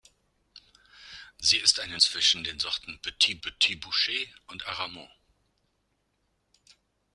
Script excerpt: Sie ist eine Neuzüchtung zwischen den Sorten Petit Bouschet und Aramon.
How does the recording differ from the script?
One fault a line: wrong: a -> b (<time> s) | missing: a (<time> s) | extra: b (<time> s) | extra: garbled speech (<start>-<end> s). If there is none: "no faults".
missing: Neuzüchtung (2.0 s)
extra: Petit (3.4 s)